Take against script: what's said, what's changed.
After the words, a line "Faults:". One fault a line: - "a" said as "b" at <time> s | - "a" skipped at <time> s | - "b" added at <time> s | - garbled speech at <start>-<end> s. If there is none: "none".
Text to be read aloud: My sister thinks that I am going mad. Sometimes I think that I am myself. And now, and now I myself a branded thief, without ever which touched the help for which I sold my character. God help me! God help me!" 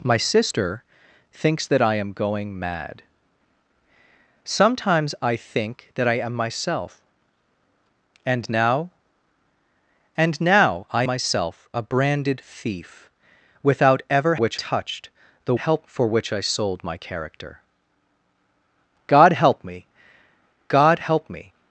My sister thinks that I am going mad. Sometimes I think that I am myself. And now, and now I myself a branded thief, without ever which touched the help for which I sold my character. God help me! God help me!"
Faults:
none